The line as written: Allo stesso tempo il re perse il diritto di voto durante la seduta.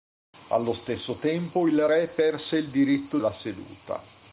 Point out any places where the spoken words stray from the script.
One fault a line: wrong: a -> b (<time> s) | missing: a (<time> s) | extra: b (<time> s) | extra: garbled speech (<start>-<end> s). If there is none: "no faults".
missing: di voto durante (3.2 s)